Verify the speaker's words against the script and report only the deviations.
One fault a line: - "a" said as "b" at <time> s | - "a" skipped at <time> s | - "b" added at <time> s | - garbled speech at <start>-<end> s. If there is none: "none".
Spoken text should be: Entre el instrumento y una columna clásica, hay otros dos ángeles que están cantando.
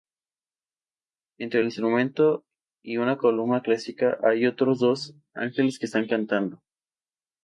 none